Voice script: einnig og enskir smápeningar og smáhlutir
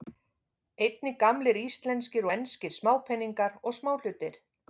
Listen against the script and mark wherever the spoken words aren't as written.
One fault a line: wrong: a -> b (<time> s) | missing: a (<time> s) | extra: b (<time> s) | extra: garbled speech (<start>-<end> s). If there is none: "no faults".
extra: gamlir íslenskir (1.2 s)